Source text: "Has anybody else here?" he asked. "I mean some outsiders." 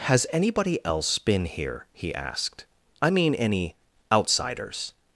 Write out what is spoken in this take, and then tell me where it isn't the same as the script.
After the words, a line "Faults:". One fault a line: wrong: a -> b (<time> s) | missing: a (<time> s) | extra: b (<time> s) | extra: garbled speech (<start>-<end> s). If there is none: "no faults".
"Has anybody else been here?" he asked. "I mean any outsiders."
Faults:
extra: been (1.2 s)
wrong: some -> any (3.4 s)